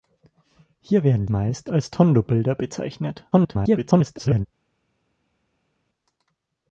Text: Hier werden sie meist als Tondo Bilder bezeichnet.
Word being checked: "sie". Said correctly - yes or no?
no